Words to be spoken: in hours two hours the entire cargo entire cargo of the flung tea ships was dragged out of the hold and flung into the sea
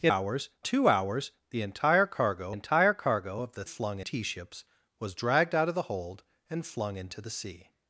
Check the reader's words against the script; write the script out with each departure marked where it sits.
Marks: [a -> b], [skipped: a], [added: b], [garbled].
in hours two hours the entire cargo entire cargo of the flung tea ships was dragged out of the hold and flung into the sea